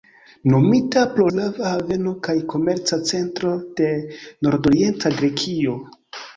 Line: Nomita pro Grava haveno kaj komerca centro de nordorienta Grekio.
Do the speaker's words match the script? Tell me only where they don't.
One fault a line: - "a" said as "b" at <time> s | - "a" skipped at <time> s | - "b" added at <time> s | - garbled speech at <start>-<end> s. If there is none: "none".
none